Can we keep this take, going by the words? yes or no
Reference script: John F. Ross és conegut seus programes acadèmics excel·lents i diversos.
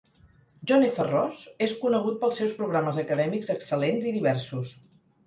no